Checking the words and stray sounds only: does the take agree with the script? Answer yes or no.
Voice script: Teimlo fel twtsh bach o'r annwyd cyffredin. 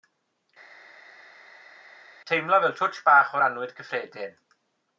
yes